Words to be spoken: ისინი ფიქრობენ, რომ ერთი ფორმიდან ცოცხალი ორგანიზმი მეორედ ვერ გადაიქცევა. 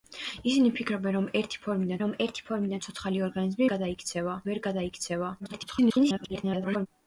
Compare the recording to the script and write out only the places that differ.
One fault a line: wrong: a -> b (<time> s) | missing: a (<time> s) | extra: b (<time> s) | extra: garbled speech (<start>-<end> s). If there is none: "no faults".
extra: რომ ერთი ფორმიდან (2.0 s)
wrong: მეორედ -> გადაიქცევა (3.7 s)
extra: garbled speech (5.4-6.9 s)